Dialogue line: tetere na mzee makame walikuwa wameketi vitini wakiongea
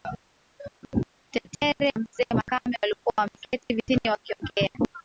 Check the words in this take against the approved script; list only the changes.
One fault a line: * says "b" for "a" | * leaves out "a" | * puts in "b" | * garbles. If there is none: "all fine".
* leaves out "na"